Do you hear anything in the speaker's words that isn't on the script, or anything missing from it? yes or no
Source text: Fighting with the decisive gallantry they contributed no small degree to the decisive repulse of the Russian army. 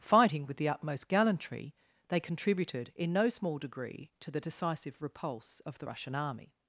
yes